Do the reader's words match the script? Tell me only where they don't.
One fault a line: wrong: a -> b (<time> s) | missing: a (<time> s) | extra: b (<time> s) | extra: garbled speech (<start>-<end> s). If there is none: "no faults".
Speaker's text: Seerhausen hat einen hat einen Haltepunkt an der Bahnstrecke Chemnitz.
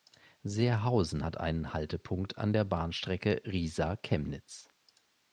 missing: hat einen (1.7 s)
extra: Riesa (3.5 s)